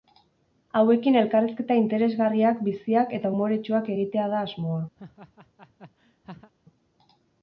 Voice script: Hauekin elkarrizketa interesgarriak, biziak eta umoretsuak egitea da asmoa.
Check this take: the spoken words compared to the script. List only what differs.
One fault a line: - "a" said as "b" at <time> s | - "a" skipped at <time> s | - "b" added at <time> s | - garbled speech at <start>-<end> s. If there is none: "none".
none